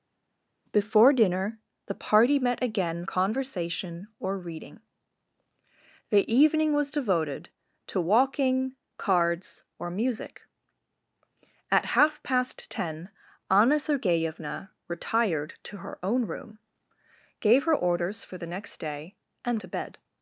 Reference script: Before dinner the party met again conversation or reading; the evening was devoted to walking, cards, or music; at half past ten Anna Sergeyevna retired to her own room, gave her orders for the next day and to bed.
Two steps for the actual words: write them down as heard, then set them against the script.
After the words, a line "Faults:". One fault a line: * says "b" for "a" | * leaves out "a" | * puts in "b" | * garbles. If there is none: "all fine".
Before dinner the party met again conversation or reading; the evening was devoted to walking, cards, or music; at half past ten Anna Sergeyevna retired to her own room, gave her orders for the next day and to bed.
Faults:
all fine